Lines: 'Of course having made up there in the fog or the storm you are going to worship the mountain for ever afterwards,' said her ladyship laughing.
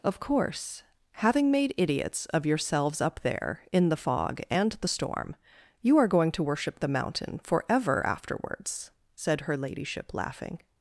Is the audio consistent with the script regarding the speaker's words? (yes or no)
no